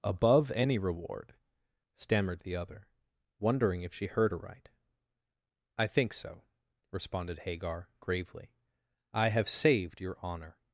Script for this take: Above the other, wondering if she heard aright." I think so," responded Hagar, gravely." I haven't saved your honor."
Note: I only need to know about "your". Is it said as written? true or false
true